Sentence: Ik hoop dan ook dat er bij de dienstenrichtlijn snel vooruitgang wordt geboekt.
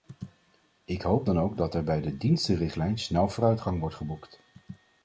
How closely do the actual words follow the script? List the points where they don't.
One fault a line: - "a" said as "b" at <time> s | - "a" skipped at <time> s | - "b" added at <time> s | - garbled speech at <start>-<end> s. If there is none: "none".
none